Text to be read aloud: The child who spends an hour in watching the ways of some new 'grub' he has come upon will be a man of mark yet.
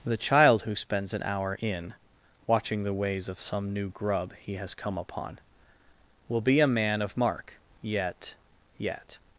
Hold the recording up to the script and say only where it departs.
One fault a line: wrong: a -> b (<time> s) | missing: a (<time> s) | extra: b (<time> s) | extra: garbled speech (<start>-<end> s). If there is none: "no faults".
extra: yet (8.8 s)